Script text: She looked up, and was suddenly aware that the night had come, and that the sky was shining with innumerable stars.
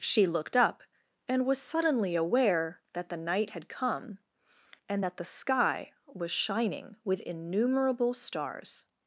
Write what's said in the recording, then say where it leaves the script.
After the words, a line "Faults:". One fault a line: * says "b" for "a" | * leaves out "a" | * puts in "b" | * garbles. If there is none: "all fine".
She looked up, and was suddenly aware that the night had come, and that the sky was shining with innumerable stars.
Faults:
all fine